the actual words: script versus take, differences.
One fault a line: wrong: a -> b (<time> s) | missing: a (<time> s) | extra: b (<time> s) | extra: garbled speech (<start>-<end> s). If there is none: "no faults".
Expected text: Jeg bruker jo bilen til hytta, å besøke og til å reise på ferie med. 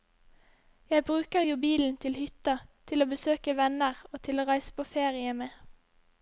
extra: til (2.9 s)
extra: venner (3.6 s)